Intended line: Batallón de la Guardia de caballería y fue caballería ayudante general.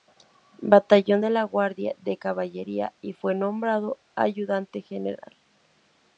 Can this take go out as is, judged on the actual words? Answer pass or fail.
fail